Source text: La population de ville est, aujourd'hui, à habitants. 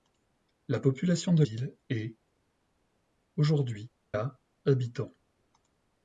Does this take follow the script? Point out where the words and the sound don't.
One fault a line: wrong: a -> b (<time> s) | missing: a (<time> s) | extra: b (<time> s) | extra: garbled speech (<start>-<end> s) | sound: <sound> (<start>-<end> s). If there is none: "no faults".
no faults